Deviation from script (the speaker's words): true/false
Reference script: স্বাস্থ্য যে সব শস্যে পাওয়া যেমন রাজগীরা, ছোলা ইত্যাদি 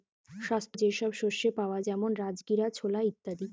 false